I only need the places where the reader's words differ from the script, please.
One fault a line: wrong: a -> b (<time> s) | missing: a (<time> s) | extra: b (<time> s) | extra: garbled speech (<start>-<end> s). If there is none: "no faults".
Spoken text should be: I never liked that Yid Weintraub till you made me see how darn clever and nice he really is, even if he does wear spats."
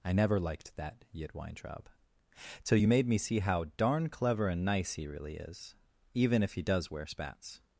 no faults